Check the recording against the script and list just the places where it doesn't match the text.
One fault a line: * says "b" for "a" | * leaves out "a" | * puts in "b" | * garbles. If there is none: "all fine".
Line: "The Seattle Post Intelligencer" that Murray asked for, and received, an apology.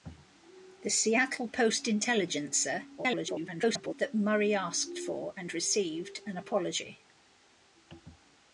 * garbles